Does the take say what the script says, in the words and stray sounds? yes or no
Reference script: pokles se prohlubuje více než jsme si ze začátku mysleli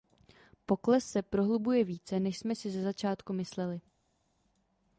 yes